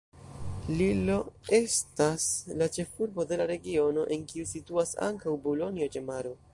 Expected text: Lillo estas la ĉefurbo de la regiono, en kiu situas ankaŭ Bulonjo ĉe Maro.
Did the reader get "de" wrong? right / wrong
right